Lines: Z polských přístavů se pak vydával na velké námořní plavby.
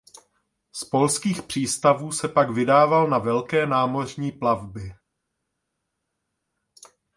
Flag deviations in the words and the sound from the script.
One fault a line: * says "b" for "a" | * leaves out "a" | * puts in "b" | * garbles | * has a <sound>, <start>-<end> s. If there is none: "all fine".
all fine